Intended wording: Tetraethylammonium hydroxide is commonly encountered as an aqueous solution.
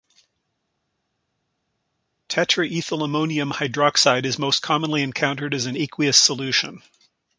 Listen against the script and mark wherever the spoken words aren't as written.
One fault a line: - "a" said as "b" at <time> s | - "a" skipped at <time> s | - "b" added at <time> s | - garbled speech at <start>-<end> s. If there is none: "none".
- "most" added at 4.4 s